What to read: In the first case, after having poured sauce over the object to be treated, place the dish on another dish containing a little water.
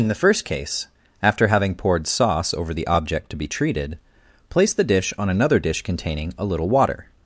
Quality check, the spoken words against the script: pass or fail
pass